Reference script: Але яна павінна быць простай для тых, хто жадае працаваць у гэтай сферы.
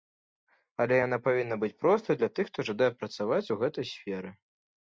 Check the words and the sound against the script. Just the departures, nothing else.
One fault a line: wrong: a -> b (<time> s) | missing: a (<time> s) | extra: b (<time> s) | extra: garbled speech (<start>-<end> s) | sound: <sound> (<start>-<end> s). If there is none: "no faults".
no faults